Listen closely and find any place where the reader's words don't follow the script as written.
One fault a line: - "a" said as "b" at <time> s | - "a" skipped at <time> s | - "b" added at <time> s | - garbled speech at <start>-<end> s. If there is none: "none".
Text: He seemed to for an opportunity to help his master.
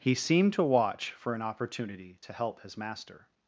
- "watch" added at 0.6 s